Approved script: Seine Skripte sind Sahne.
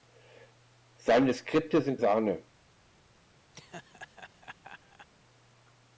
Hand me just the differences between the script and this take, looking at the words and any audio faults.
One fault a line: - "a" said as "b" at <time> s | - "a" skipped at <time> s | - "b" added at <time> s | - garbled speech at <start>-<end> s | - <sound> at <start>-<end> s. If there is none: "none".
- laugh at 3.5-5.1 s